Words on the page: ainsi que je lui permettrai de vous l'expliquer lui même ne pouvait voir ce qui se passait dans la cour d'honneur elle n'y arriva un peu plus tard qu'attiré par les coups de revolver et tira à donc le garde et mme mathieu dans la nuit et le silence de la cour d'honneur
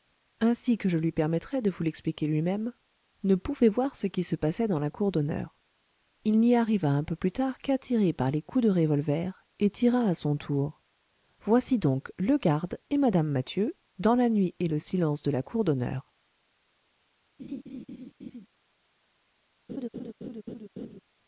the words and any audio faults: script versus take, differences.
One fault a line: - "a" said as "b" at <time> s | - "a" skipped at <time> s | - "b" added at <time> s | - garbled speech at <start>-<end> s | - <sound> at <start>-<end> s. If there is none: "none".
- "elle" said as "il" at 6.2 s
- "son tour voici" added at 10.2 s
- laugh at 17.4-18.5 s
- laugh at 19.7-21.0 s